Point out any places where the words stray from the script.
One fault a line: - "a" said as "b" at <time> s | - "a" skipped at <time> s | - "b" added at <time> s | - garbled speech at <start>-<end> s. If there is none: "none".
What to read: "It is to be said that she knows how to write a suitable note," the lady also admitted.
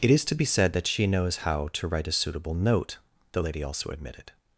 none